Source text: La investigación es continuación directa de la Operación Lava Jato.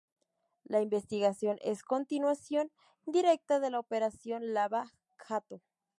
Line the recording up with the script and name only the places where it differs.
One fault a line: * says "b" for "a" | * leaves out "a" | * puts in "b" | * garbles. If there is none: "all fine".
all fine